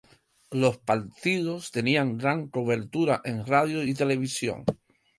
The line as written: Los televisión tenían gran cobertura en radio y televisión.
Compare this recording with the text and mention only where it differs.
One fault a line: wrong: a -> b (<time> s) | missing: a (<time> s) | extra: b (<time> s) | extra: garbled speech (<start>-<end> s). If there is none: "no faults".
wrong: televisión -> partidos (0.8 s)